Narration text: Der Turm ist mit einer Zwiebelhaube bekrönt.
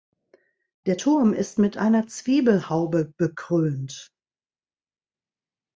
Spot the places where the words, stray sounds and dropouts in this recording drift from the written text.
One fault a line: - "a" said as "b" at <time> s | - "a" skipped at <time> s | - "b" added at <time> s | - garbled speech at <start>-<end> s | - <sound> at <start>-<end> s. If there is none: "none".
none